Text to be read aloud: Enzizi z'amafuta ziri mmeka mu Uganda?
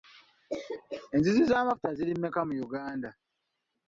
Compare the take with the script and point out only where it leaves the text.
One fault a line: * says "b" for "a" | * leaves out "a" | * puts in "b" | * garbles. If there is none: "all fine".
all fine